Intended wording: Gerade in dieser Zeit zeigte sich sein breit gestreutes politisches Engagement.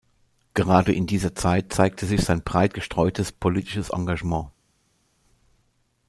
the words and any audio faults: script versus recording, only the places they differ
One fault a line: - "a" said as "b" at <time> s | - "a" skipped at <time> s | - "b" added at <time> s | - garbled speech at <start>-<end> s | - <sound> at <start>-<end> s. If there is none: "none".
none